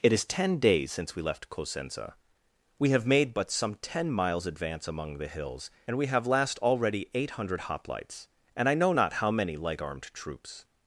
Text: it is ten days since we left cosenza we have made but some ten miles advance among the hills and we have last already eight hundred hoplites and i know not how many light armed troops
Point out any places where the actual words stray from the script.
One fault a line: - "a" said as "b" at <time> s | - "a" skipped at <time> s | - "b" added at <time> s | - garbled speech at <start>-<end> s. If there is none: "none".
none